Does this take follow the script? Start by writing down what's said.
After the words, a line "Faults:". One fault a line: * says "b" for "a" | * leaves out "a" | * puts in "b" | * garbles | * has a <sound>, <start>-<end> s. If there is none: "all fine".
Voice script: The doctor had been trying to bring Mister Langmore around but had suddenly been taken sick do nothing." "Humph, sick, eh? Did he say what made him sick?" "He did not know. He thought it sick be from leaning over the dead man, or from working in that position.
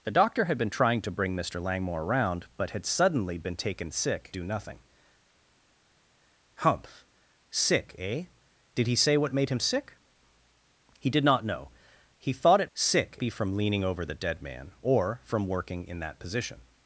The doctor had been trying to bring Mister Langmore around but had suddenly been taken sick do nothing." "Humph, sick, eh? Did he say what made him sick?" "He did not know. He thought it sick be from leaning over the dead man, or from working in that position.
Faults:
all fine